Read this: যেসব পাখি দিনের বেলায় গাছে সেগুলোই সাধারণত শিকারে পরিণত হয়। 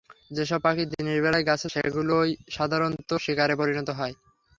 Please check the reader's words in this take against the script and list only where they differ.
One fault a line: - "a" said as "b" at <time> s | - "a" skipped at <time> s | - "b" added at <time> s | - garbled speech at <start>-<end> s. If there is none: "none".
none